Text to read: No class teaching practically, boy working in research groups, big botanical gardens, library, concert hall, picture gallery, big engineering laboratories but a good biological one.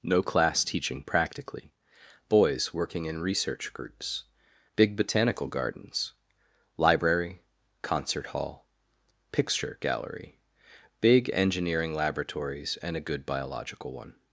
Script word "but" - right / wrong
wrong